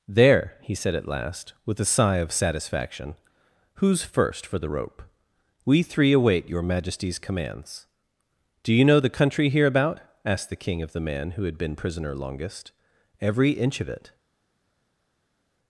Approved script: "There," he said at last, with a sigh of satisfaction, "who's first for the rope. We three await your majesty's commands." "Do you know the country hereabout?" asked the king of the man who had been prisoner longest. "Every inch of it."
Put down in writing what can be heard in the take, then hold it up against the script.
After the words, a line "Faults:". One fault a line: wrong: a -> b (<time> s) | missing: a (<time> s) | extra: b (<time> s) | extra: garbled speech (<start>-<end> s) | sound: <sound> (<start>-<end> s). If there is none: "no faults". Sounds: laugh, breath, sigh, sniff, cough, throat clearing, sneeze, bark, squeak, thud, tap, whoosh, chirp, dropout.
"There," he said at last, with a sigh of satisfaction, "who's first for the rope. We three await your majesty's commands." "Do you know the country hereabout?" asked the king of the man who had been prisoner longest. "Every inch of it."
Faults:
no faults